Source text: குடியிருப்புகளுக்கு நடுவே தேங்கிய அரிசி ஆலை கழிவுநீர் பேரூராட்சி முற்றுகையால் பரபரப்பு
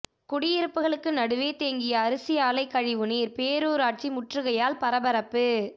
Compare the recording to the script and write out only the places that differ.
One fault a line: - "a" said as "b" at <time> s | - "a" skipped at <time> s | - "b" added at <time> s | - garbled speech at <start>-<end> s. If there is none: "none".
none